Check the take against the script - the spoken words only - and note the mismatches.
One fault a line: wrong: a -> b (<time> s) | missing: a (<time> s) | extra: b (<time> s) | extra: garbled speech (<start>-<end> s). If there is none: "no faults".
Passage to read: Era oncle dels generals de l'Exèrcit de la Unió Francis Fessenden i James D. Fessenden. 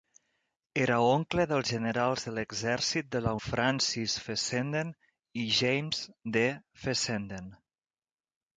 missing: Unió (3.3 s)